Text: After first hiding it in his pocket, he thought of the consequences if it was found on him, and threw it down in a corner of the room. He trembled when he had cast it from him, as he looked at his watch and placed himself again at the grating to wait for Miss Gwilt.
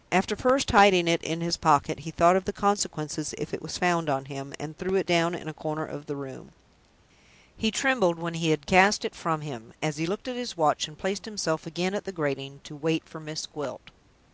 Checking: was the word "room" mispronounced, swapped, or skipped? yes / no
no